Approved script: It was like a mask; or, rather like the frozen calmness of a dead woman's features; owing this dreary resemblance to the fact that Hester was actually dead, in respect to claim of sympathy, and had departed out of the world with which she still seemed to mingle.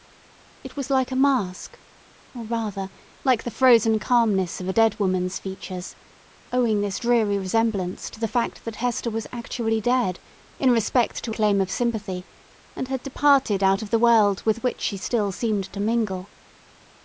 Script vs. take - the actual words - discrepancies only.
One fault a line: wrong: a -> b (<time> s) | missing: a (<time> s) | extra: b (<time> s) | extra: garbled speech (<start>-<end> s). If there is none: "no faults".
no faults